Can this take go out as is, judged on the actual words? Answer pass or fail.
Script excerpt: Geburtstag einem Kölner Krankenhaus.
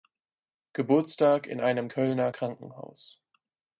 fail